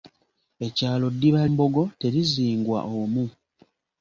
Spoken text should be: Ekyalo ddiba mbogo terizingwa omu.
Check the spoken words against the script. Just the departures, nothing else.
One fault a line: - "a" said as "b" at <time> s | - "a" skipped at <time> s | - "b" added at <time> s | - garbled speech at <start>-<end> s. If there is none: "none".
none